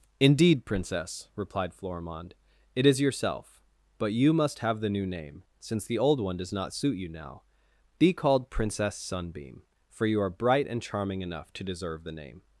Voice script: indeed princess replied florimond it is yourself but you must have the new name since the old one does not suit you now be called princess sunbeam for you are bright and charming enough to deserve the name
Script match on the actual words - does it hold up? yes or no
yes